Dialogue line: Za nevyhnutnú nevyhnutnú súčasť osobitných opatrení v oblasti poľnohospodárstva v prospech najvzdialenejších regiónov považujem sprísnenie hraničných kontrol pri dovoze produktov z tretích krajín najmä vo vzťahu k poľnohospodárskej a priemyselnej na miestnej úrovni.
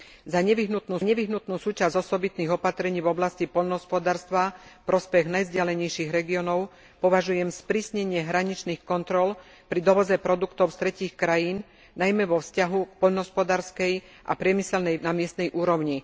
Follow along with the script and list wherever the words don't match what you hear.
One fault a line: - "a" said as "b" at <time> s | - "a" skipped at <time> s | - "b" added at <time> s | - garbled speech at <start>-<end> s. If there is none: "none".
none